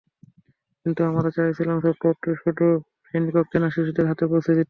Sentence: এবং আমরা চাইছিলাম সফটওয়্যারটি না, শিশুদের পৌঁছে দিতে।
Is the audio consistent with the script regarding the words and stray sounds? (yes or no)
no